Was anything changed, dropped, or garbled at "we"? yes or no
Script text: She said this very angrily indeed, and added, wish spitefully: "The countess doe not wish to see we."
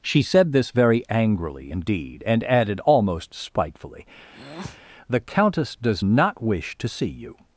yes